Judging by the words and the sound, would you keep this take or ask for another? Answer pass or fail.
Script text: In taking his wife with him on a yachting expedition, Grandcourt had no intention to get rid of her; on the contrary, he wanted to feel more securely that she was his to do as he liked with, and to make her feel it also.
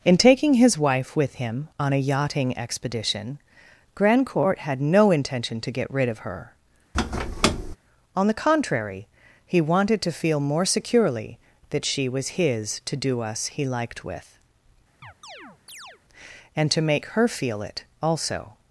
fail